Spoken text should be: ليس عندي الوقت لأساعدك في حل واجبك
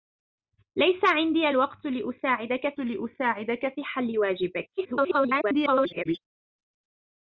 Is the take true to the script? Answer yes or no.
no